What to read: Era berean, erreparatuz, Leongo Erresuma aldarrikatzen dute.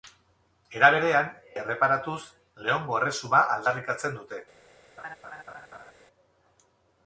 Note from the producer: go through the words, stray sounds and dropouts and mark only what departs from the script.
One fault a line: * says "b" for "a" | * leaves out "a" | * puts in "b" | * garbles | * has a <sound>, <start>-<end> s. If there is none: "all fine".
* has a laugh, 5.0-5.9 s